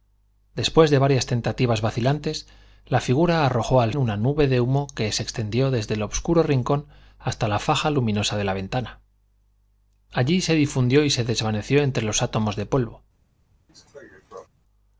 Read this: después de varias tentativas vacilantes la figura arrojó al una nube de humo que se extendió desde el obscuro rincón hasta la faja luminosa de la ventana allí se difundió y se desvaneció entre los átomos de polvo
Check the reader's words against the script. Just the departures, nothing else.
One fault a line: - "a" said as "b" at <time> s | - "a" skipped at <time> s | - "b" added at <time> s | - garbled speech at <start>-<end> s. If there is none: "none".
none